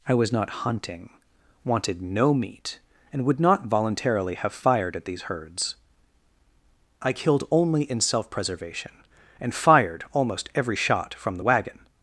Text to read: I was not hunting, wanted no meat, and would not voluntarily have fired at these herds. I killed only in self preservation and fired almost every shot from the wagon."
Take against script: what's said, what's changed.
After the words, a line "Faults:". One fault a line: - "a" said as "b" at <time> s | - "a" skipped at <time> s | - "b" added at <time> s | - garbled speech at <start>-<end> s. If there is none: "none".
I was not hunting, wanted no meat, and would not voluntarily have fired at these herds. I killed only in self preservation and fired almost every shot from the wagon."
Faults:
none